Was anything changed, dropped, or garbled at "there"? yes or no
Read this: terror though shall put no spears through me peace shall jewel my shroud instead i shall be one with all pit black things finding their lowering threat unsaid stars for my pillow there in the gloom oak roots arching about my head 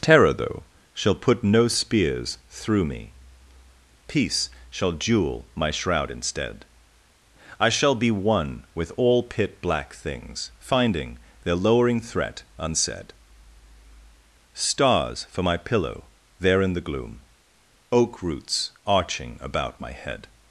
no